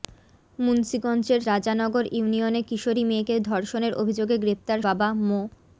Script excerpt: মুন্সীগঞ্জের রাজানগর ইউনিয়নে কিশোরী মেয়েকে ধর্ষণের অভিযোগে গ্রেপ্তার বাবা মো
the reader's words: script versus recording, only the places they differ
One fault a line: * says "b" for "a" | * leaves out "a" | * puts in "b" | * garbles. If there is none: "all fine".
all fine